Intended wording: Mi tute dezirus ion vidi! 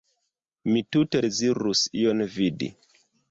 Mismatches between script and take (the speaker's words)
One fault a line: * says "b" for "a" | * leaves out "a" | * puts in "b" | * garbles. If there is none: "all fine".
all fine